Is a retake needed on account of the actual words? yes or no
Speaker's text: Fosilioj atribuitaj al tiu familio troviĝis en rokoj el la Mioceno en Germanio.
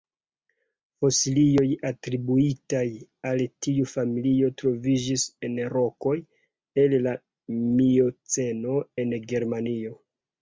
no